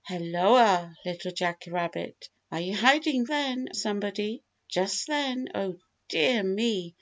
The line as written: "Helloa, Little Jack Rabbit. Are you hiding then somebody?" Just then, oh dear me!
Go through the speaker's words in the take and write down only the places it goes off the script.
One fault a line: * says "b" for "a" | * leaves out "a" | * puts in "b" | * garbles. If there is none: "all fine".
all fine